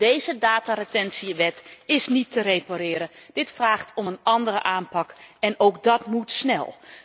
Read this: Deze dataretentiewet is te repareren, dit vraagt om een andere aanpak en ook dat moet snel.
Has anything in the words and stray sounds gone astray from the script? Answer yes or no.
yes